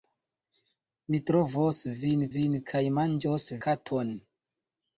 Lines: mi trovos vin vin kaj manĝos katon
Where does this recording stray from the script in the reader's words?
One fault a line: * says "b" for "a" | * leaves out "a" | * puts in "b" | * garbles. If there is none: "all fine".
all fine